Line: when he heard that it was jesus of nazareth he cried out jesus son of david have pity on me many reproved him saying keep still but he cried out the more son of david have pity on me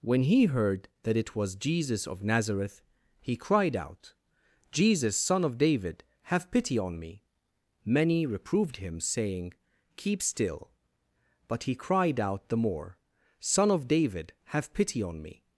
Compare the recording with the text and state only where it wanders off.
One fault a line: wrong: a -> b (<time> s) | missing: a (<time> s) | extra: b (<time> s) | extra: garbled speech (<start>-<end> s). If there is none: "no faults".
no faults